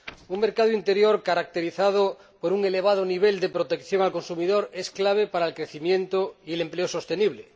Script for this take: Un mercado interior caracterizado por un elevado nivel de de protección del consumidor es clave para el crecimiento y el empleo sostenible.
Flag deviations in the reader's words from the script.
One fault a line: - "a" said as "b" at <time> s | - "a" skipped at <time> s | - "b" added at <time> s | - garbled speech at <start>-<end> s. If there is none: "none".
- "de" skipped at 3.5 s